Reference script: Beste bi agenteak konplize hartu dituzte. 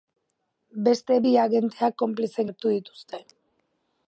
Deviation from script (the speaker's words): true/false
false